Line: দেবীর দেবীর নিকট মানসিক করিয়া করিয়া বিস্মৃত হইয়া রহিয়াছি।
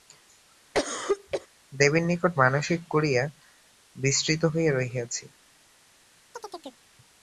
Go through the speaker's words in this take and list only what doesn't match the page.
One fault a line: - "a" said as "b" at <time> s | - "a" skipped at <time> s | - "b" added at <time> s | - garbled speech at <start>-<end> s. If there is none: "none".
- "দেবীর" skipped at 2.0 s
- "করিয়া" skipped at 3.2 s